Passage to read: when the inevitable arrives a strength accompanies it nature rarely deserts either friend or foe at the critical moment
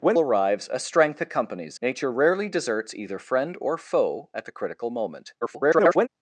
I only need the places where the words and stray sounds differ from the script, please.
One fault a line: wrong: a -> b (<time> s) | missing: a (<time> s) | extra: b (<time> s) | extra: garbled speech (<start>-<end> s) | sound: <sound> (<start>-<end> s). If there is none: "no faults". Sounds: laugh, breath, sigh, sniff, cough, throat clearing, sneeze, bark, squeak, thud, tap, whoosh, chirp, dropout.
missing: the inevitable (0.2 s)
missing: it (1.8 s)
extra: garbled speech (5.4-6.1 s)